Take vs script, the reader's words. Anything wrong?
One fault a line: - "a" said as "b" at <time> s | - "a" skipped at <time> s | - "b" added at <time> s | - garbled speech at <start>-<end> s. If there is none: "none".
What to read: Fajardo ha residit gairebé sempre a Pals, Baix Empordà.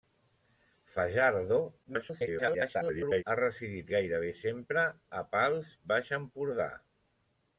- garbled speech at 1.8-3.2 s